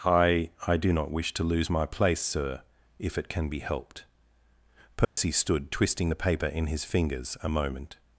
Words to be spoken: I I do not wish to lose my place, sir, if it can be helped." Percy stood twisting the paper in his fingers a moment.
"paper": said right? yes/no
yes